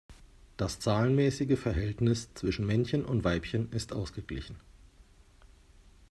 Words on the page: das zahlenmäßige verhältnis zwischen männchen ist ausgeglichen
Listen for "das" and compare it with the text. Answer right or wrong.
right